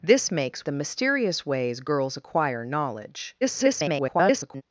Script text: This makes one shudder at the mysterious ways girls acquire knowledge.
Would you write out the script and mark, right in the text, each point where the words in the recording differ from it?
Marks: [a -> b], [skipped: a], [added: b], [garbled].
This makes [skipped: one shudder at] the mysterious ways girls acquire knowledge. [garbled]